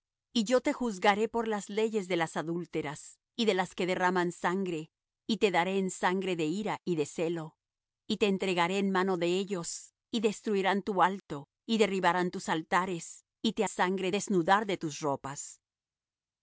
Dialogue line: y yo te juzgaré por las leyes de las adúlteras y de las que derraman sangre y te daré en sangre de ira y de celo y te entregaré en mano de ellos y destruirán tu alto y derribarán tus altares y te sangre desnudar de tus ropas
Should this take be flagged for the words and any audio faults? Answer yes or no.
no